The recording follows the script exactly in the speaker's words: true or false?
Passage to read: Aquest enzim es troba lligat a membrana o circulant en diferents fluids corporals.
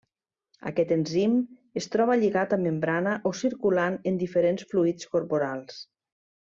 true